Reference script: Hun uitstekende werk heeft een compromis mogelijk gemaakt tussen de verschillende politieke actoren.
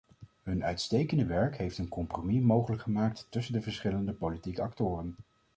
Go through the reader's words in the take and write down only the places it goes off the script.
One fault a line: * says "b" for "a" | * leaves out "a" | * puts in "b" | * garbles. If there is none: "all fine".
all fine